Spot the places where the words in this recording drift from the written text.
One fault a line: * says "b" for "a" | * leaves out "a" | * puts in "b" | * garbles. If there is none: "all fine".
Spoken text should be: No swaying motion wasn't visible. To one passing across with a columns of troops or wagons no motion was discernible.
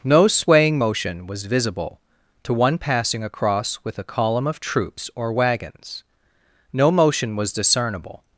* says "was" for "wasn't"
* says "column" for "columns"